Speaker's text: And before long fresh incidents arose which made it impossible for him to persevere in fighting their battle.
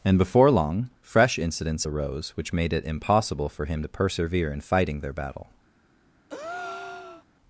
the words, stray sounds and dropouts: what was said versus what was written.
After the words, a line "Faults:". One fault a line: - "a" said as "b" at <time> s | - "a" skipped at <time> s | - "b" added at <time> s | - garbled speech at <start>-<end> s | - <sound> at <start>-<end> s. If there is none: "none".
And before long fresh incidents arose which made it impossible for him to persevere in fighting their battle.
Faults:
- breath at 6.3-7.3 s